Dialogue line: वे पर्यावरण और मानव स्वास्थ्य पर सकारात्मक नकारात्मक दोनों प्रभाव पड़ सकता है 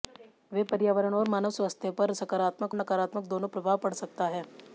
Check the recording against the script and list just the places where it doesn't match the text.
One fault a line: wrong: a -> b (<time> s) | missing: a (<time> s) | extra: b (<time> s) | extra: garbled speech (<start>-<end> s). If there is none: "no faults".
no faults